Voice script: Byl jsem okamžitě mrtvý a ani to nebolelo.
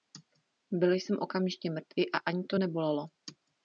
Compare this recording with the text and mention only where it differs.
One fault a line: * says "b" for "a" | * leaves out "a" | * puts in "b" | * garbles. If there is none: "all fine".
all fine